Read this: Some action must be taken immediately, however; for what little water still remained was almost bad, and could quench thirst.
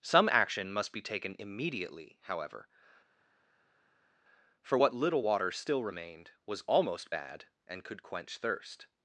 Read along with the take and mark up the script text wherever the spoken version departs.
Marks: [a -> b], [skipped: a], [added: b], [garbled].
Some action must be taken immediately, however; for what little water still remained was almost bad, and could quench thirst.